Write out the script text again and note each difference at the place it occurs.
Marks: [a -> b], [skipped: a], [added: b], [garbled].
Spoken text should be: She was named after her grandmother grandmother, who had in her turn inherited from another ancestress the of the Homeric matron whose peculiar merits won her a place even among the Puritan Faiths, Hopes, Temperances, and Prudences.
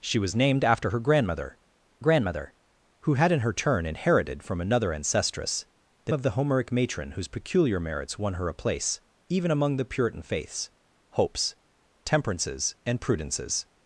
She was named after her grandmother grandmother, who had in her turn inherited from another ancestress the of the Homeric matron whose peculiar merits won her a place even among the Puritan Faiths, Hopes, Temperances, and Prudences.